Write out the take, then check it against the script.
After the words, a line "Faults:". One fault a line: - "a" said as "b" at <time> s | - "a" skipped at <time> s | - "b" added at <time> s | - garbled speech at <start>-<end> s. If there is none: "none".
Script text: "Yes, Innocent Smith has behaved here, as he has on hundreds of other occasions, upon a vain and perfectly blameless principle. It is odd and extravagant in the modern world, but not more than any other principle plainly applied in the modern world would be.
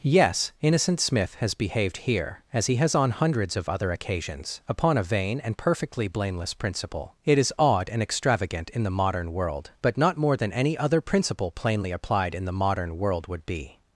"Yes, Innocent Smith has behaved here, as he has on hundreds of other occasions, upon a vain and perfectly blameless principle. It is odd and extravagant in the modern world, but not more than any other principle plainly applied in the modern world would be.
Faults:
none